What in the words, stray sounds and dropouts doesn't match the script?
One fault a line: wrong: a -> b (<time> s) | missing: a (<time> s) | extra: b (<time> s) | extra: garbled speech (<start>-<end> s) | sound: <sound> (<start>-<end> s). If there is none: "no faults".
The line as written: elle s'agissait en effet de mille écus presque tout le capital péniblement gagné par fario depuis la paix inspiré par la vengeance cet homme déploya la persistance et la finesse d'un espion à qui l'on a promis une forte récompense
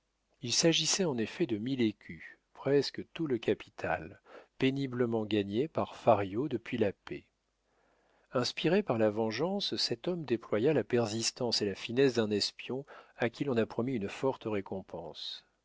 wrong: elle -> il (0.4 s)